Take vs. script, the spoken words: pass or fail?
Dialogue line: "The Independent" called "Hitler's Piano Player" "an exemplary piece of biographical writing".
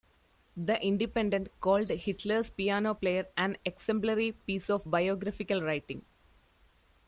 pass